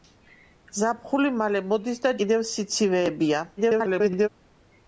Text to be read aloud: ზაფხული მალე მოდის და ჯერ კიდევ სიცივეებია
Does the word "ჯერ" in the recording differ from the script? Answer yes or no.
yes